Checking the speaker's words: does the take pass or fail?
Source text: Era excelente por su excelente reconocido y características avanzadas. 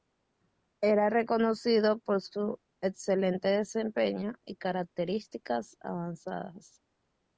fail